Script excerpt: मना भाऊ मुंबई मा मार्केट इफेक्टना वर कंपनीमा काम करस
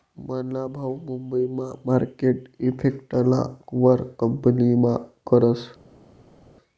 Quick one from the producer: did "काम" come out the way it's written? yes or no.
no